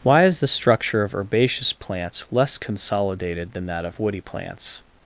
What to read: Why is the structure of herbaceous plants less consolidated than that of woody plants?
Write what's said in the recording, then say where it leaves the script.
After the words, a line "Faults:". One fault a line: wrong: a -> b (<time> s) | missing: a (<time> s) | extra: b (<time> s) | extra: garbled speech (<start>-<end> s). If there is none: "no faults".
Why is the structure of herbaceous plants less consolidated than that of woody plants?
Faults:
no faults